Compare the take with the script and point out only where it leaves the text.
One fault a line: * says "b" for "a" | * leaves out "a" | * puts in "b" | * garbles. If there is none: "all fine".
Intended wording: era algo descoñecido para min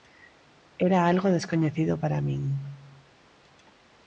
all fine